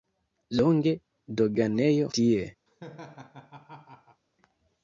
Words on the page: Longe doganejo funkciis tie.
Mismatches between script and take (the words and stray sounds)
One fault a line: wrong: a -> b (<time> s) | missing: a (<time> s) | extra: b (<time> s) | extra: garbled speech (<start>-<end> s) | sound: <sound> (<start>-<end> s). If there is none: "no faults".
missing: funkciis (2.1 s)
sound: laugh (2.7-4.2 s)